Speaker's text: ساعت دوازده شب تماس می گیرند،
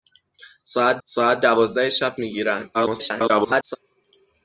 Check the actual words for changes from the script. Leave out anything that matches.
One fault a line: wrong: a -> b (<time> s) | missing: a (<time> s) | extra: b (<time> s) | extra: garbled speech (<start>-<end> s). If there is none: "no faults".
extra: ساعت (1.0 s)
missing: تماس (2.2 s)
extra: garbled speech (2.7-3.8 s)